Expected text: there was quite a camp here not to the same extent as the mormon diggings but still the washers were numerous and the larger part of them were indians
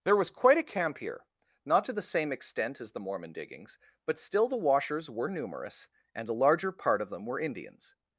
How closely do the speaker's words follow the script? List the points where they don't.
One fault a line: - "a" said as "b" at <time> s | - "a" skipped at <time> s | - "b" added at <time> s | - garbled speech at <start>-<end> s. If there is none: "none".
- "the" said as "a" at 6.3 s